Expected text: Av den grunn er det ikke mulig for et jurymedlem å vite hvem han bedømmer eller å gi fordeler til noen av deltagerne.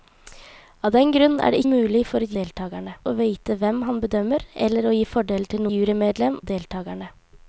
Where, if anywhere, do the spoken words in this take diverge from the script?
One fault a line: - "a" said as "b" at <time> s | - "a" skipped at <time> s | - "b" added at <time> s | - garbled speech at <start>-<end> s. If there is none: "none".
- "ikke" skipped at 1.6 s
- "jurymedlem" said as "deltagerne" at 2.4 s
- "noen" said as "jurymedlem" at 5.7 s